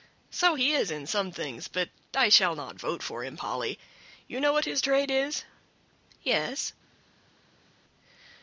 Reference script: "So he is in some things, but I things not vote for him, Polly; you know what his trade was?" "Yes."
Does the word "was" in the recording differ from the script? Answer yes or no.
yes